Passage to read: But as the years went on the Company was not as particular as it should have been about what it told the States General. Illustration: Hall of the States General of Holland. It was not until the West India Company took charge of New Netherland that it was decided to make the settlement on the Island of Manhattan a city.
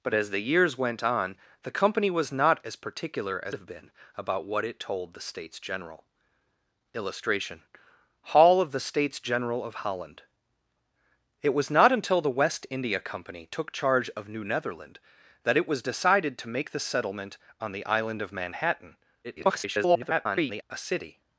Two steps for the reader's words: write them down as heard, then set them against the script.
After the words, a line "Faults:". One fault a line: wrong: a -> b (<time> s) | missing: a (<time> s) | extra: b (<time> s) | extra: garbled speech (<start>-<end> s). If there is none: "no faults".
But as the years went on the Company was not as particular as have been about what it told the States General. Illustration: Hall of the States General of Holland. It was not until the West India Company took charge of New Netherland that it was decided to make the settlement on the Island of Manhattan [garbled] a city.
Faults:
missing: it should (3.5 s)
extra: garbled speech (19.2-20.6 s)